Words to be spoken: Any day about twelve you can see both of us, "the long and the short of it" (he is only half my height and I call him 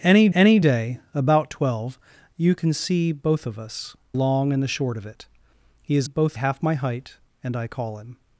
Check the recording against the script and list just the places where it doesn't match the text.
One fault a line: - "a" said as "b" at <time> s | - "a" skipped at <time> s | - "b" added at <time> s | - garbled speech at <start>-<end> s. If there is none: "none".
- "any" added at 0.3 s
- "the" skipped at 4.0 s
- "only" said as "both" at 6.0 s